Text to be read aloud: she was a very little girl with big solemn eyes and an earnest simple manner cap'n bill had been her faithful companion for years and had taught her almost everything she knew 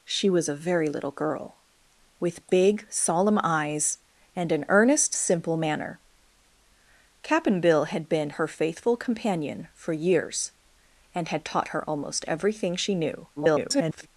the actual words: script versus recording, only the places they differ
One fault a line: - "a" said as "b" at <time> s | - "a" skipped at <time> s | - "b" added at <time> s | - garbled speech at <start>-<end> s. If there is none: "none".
- garbled speech at 13.4-14.1 s